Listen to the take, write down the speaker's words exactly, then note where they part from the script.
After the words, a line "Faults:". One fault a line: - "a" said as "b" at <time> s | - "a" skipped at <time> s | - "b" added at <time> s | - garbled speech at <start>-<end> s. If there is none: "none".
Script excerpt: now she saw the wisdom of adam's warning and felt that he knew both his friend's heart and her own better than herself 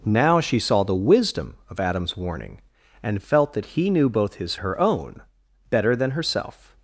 now she saw the wisdom of adam's warning and felt that he knew both his her own better than herself
Faults:
- "friend's heart and" skipped at 4.5 s